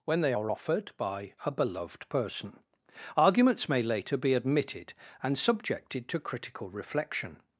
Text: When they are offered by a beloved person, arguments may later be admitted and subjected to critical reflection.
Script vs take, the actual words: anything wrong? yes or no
no